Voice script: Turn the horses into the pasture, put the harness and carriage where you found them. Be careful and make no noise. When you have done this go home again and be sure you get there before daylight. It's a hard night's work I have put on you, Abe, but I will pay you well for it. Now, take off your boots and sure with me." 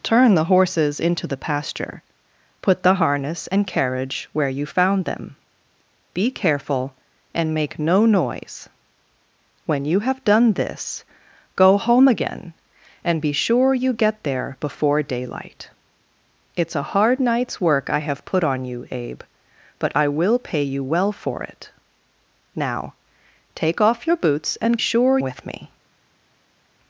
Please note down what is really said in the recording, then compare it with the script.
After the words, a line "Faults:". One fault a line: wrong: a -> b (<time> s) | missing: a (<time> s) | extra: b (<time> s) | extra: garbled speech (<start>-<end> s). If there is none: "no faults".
Turn the horses into the pasture, put the harness and carriage where you found them. Be careful and make no noise. When you have done this go home again and be sure you get there before daylight. It's a hard night's work I have put on you, Abe, but I will pay you well for it. Now, take off your boots and sure with me."
Faults:
no faults